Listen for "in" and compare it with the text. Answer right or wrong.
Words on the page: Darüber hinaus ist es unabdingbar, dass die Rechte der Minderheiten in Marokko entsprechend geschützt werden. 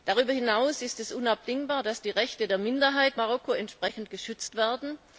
wrong